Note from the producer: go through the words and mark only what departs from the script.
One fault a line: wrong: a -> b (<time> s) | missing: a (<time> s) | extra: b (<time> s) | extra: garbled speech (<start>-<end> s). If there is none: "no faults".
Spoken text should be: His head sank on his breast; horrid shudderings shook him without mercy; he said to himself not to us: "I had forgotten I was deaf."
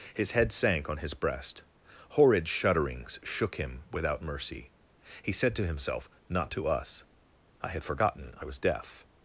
no faults